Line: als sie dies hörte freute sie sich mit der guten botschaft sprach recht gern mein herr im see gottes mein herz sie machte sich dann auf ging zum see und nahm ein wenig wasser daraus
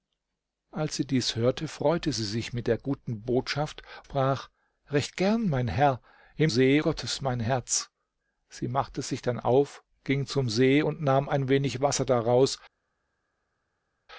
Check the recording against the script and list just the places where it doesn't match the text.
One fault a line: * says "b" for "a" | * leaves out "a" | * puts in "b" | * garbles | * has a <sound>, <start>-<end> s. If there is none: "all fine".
all fine